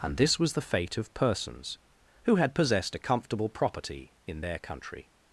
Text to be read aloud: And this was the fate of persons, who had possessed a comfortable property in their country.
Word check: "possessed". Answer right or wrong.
right